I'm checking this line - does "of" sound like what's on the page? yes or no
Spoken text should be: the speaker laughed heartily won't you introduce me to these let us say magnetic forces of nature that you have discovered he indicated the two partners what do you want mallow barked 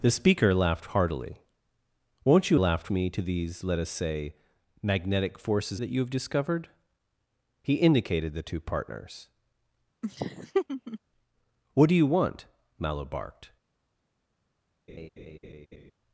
no